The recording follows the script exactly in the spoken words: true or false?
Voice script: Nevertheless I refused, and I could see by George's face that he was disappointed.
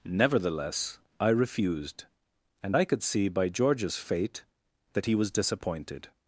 false